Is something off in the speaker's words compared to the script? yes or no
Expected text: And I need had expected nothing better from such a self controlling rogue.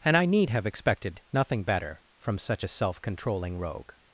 yes